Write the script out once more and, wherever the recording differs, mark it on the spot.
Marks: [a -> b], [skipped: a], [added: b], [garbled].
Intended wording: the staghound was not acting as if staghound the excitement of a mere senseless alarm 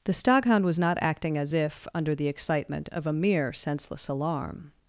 the staghound was not acting as if [staghound -> under] the excitement of a mere senseless alarm